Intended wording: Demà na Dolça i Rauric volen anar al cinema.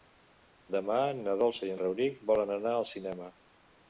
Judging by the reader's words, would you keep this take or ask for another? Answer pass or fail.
pass